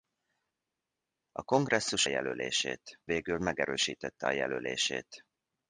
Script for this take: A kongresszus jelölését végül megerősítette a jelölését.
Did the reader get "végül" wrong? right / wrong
right